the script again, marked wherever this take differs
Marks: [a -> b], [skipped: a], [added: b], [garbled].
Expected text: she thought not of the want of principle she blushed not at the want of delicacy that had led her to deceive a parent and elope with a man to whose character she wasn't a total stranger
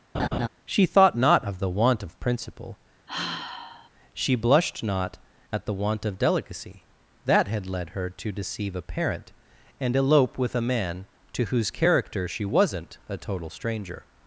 she thought not of the want of principle she blushed not at the want of delicacy that had led her to deceive a parent and elope with a man to whose character she wasn't a total stranger